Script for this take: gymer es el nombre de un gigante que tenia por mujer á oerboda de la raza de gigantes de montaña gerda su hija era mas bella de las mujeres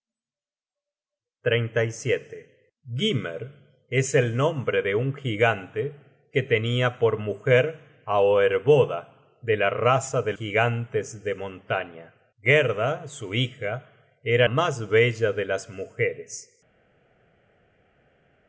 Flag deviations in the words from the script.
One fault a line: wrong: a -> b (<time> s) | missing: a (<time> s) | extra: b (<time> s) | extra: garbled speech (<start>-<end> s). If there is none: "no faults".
no faults